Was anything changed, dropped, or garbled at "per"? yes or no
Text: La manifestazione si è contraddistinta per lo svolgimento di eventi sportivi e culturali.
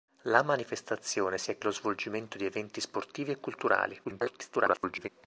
yes